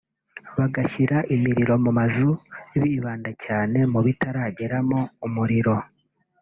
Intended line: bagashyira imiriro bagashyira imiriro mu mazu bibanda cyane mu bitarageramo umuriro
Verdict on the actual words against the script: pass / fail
fail